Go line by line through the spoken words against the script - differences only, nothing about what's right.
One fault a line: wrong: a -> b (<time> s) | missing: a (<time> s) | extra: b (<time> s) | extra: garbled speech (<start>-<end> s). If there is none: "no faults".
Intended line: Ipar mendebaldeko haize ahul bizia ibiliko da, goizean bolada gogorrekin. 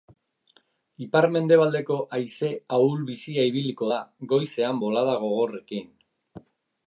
no faults